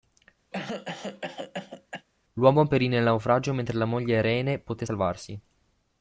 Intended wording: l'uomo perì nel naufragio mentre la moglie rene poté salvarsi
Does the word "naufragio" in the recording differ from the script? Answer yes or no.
no